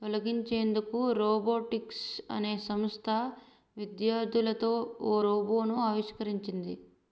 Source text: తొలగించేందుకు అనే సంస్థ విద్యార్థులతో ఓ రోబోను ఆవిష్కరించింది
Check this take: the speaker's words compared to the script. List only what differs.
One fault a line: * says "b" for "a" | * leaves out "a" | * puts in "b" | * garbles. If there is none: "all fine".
* puts in "రోబోటిక్స్"